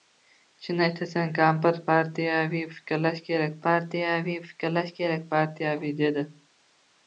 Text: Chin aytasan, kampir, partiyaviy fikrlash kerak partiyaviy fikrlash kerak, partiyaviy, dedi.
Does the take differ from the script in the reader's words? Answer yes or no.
no